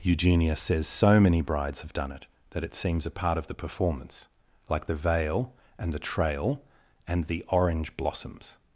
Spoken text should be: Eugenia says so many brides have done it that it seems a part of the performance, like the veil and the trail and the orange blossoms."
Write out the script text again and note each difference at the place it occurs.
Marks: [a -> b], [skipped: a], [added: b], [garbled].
Eugenia says so many brides have done it that it seems a part of the performance, like the veil and the trail and the orange blossoms."